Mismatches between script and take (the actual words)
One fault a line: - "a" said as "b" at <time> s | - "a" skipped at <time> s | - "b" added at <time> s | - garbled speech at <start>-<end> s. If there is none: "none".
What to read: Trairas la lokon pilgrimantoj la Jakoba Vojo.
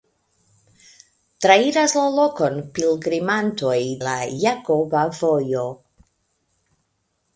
none